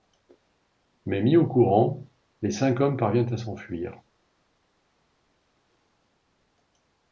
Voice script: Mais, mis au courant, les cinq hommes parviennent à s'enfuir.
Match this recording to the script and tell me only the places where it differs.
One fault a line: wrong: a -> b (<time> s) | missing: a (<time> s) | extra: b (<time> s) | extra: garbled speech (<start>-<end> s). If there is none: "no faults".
no faults